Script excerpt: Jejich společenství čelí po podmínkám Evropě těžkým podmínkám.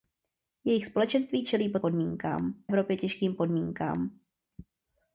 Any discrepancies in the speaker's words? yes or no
no